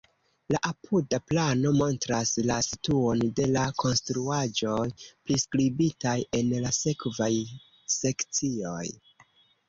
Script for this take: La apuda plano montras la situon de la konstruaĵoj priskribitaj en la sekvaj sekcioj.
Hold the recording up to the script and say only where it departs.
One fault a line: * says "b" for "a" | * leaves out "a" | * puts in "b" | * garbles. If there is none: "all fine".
all fine